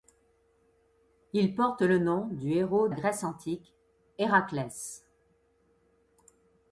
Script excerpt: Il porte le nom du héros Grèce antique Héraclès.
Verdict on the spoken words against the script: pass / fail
pass